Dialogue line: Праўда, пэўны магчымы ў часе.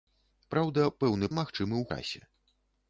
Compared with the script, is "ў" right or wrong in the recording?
right